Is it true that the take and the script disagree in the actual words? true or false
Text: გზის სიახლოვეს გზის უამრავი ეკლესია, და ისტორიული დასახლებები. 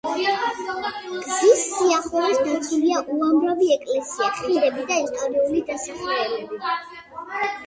true